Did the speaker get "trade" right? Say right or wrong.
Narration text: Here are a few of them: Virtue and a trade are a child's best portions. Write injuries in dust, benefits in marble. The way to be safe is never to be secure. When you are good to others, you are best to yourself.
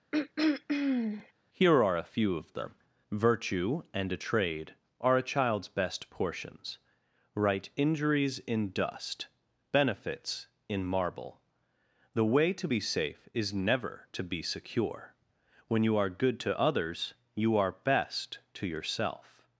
right